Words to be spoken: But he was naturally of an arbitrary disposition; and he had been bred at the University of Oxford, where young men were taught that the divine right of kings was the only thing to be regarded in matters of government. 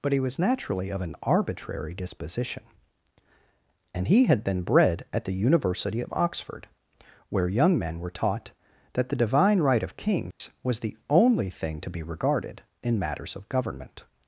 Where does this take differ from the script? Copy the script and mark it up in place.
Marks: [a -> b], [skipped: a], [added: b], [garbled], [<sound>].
But he was naturally of an arbitrary disposition; and he had been bred at the University of Oxford, where young men were taught that the divine right of kings [dropout] was the only thing to be regarded in matters of government.